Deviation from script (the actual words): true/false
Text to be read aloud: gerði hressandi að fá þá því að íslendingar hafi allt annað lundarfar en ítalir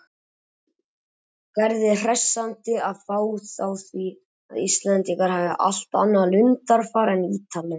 false